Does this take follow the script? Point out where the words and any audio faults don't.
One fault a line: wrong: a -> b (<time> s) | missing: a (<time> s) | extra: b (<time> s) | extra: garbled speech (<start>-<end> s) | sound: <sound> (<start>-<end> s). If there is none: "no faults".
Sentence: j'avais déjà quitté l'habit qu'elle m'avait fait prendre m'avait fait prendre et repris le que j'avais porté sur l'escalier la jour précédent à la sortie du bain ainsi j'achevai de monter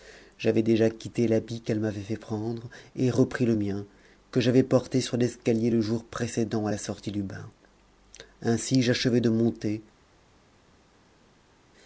missing: m'avait fait prendre (2.7 s)
extra: mien (3.5 s)
wrong: la -> le (5.7 s)